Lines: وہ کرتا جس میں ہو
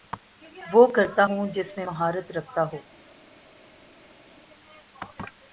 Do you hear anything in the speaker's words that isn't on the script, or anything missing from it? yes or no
yes